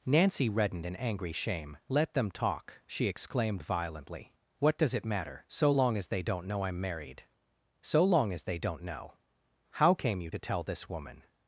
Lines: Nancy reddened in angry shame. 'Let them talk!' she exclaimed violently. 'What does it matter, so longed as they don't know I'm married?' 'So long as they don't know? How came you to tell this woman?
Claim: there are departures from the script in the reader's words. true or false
true